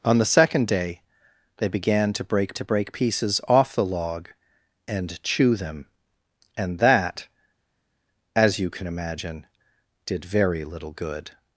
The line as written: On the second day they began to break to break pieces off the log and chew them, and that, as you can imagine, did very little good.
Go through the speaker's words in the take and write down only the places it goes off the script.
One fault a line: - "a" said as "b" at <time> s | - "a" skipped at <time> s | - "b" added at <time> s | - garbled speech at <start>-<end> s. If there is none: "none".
none